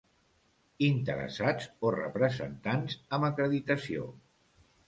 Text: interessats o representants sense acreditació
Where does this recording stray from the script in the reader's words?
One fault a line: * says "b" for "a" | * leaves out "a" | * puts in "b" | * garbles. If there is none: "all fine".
* says "amb" for "sense"